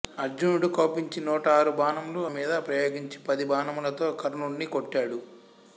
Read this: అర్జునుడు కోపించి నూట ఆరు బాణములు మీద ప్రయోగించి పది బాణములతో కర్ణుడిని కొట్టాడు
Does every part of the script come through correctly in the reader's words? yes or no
yes